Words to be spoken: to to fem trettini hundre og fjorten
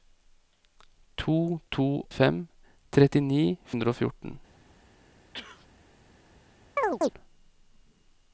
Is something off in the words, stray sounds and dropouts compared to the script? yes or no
yes